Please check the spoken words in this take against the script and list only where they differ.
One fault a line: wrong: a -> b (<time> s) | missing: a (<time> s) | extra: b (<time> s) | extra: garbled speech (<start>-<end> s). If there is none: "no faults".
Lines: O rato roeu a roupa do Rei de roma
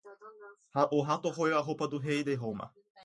no faults